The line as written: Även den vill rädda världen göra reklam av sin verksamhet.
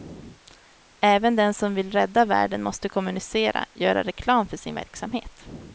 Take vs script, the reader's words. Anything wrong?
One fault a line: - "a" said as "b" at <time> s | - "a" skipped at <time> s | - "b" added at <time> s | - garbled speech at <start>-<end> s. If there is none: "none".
- "som" added at 1.5 s
- "måste kommunicera" added at 2.6 s
- "av" said as "för" at 4.5 s